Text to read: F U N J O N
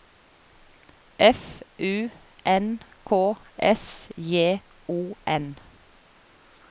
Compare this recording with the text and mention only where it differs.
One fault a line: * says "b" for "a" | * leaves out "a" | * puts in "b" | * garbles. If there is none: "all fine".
* puts in "K S"